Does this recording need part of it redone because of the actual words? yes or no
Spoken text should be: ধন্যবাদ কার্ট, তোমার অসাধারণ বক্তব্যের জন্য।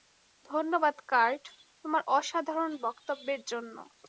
no